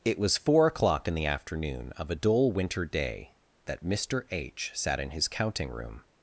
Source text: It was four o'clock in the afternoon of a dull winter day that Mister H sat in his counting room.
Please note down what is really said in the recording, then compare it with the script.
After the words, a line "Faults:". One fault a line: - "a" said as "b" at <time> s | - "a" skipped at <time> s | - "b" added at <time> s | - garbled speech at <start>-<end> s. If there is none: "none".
It was four o'clock in the afternoon of a dull winter day that Mister H sat in his counting room.
Faults:
none